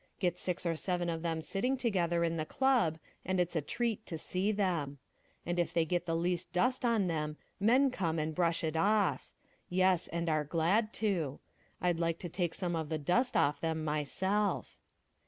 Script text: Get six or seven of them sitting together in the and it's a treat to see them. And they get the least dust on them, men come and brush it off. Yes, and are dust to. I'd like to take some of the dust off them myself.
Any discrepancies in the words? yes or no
yes